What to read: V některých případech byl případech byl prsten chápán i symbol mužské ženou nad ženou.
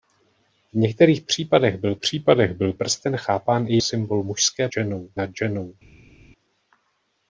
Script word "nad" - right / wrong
right